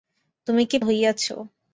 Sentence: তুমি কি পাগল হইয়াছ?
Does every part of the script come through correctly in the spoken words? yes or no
no